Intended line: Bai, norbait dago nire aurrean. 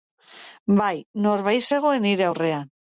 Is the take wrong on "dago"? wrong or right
wrong